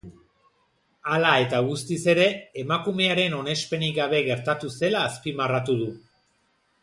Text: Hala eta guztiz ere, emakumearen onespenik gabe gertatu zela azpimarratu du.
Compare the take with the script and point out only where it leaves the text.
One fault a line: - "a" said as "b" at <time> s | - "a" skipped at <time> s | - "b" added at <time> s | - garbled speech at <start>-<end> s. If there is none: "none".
none